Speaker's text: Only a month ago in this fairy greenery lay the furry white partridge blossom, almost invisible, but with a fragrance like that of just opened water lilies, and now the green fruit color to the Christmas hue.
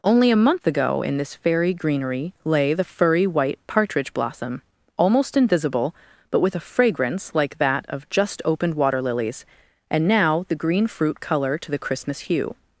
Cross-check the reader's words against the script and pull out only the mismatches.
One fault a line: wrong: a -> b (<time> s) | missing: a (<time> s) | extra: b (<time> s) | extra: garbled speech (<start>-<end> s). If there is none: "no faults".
no faults